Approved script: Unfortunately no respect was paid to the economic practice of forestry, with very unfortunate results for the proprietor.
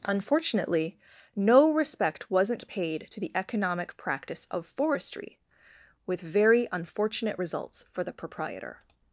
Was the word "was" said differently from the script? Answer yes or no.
yes